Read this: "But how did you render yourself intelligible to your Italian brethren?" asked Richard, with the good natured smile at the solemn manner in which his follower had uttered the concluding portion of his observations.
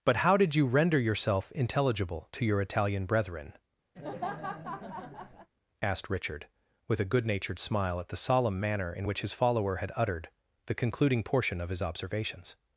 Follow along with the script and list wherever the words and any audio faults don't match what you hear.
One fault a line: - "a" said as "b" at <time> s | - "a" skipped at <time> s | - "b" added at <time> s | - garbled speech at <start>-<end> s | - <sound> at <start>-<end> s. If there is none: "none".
- laugh at 4.0-5.5 s
- "the" said as "a" at 7.0 s